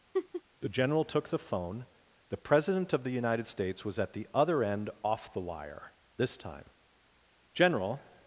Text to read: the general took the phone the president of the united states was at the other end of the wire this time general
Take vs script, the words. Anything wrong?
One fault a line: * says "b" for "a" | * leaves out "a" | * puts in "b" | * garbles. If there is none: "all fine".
* says "off" for "of"